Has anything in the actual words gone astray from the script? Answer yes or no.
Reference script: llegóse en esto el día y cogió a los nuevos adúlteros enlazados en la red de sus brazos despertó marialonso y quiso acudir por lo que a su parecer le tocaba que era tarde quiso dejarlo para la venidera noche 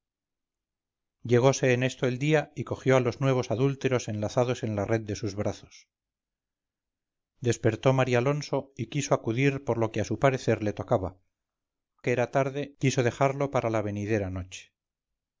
no